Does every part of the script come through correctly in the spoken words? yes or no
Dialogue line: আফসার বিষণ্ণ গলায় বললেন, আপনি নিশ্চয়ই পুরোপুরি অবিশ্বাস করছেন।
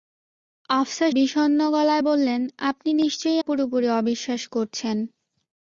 yes